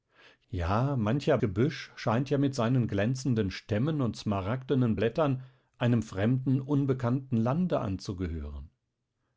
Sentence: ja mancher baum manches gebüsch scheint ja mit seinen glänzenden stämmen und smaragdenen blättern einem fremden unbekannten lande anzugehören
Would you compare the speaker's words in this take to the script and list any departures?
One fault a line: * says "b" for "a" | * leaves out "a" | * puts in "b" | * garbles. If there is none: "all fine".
* leaves out "baum manches"